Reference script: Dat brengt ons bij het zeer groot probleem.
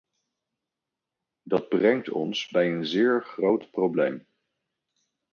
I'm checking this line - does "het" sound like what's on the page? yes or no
no